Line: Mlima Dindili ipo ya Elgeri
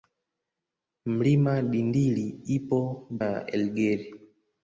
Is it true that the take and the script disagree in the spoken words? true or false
false